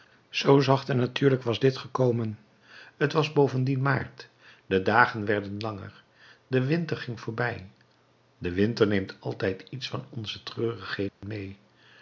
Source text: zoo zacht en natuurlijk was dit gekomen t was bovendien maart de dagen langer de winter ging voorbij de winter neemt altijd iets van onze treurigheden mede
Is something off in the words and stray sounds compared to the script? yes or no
yes